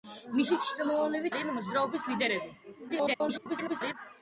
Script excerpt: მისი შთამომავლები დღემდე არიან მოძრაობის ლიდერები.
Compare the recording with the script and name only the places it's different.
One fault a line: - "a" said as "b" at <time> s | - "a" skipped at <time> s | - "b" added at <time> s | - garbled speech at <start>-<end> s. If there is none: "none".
- "დღემდე" skipped at 1.3 s
- garbled speech at 2.9-3.9 s